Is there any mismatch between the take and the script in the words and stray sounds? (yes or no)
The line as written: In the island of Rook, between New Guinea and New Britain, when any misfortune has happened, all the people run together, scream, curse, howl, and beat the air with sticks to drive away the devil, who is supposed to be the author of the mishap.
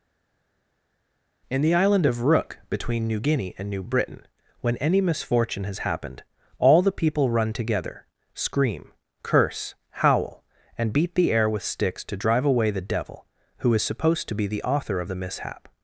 no